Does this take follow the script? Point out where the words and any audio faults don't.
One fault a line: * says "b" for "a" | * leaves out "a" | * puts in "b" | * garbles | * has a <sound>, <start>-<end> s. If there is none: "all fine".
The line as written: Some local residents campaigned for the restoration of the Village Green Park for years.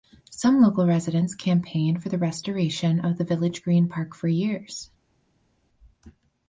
all fine